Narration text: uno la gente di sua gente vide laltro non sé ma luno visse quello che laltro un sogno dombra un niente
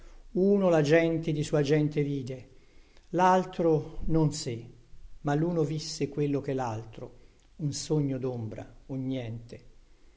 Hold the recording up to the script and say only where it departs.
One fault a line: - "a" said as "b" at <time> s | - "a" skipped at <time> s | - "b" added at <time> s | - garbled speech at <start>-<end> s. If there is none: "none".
none